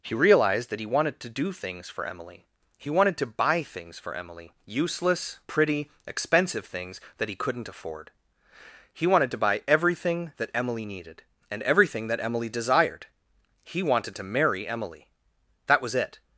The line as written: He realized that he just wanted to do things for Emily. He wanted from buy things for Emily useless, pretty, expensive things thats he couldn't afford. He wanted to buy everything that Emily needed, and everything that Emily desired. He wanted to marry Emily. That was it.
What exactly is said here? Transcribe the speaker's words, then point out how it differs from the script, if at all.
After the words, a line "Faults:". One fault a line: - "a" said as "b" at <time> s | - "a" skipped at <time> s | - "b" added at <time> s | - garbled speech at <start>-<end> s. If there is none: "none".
He realized that he wanted to do things for Emily. He wanted to buy things for Emily useless, pretty, expensive things that he couldn't afford. He wanted to buy everything that Emily needed, and everything that Emily desired. He wanted to marry Emily. That was it.
Faults:
- "just" skipped at 0.8 s
- "from" said as "to" at 3.2 s
- "thats" said as "that" at 7.2 s